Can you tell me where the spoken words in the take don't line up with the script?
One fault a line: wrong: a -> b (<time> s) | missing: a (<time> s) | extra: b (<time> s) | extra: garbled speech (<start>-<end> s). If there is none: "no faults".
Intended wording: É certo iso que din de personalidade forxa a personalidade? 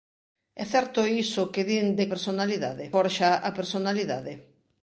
no faults